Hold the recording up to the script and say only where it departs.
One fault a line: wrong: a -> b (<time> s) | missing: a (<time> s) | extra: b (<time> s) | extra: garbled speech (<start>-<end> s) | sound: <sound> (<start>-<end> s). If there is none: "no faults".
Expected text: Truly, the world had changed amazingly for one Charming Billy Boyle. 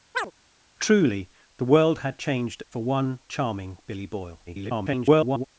sound: chirp (0.1-0.3 s)
missing: amazingly (2.6 s)
extra: garbled speech (4.5-5.5 s)